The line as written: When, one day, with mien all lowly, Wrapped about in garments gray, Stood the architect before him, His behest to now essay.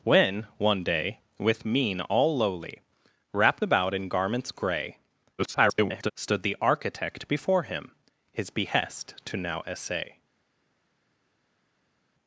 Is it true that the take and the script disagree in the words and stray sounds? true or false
true